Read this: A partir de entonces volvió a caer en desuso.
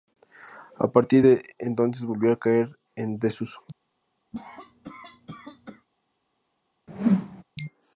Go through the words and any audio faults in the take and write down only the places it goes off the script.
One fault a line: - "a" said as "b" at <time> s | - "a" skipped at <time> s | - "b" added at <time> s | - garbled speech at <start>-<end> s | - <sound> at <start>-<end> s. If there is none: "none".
- cough at 4.3-5.9 s
- whoosh at 6.9-7.4 s